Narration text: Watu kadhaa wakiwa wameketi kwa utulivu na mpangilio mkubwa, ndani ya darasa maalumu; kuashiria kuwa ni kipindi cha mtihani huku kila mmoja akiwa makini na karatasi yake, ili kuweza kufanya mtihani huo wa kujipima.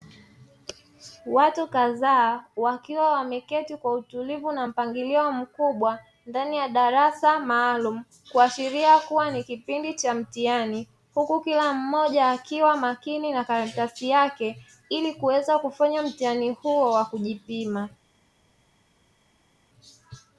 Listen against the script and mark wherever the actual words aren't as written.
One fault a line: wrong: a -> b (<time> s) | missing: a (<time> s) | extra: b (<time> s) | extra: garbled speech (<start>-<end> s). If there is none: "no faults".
no faults